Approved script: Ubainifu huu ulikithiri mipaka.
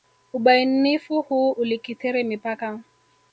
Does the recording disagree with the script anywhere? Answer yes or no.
no